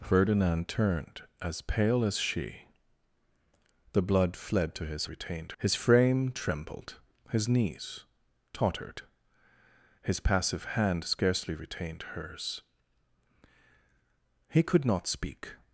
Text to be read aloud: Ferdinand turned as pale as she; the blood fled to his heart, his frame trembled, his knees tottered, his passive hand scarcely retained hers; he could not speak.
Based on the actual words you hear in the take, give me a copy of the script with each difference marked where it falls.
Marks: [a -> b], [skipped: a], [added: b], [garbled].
Ferdinand turned as pale as she; the blood fled to his [heart, -> retained] his frame trembled, his knees tottered, his passive hand scarcely retained hers; he could not speak.